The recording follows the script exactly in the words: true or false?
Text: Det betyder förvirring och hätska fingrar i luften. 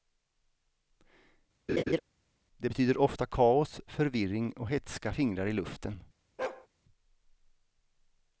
false